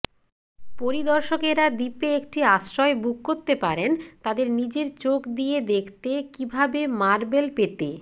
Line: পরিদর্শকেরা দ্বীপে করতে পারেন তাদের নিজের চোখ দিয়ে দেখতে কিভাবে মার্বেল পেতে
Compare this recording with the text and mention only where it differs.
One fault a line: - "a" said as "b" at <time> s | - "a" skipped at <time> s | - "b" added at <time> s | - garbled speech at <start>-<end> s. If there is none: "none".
- "একটি আশ্রয় বুক" added at 2.2 s